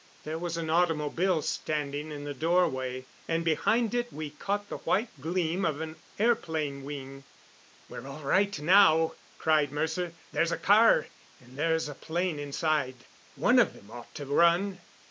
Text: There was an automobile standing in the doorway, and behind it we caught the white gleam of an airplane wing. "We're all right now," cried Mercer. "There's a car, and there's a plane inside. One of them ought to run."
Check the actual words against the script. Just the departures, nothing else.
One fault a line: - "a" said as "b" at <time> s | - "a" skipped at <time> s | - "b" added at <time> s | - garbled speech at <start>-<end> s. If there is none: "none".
none